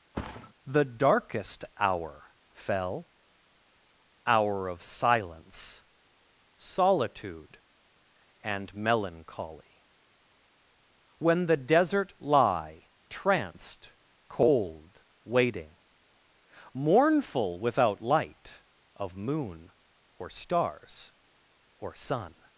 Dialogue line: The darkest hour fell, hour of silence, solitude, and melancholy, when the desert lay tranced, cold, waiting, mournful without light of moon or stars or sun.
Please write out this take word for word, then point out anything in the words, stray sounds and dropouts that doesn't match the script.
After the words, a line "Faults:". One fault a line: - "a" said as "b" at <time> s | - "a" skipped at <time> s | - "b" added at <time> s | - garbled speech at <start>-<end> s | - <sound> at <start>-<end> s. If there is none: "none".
The darkest hour fell, hour of silence, solitude, and melancholy, when the desert lie tranced, cold, waiting, mournful without light of moon or stars or sun.
Faults:
- thud at 0.1-0.5 s
- "lay" said as "lie" at 12.2 s